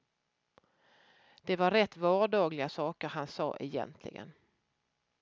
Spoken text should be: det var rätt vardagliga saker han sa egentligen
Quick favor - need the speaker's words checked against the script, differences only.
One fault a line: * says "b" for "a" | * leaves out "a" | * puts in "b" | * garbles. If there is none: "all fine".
all fine